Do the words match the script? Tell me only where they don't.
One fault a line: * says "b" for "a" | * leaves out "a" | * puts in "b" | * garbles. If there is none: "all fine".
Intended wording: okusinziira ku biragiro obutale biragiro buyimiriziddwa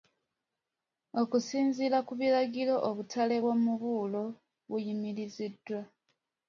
* says "bw'omubuulo" for "biragiro"